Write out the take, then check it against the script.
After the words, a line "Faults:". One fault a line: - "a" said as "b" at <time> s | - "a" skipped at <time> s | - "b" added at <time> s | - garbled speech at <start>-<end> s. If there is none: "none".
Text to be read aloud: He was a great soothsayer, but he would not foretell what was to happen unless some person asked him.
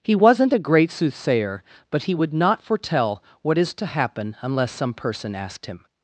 He wasn't a great soothsayer, but he would not foretell what is to happen unless some person asked him.
Faults:
- "was" said as "wasn't" at 0.1 s
- "was" said as "is" at 3.6 s